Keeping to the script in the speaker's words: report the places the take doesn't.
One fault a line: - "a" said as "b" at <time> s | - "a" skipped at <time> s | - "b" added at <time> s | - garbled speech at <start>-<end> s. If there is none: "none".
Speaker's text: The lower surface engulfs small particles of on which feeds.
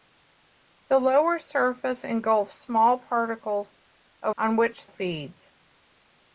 none